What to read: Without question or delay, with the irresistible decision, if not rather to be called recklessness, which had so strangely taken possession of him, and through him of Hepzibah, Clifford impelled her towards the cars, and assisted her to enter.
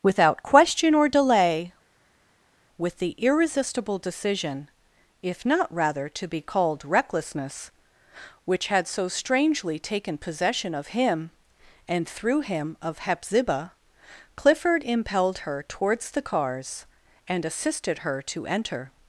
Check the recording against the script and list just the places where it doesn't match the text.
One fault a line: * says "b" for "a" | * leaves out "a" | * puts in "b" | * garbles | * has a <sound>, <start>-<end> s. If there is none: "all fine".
all fine